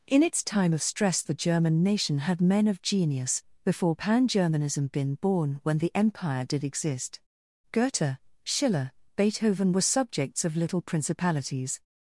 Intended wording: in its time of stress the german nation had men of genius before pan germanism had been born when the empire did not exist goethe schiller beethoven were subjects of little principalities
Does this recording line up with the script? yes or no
no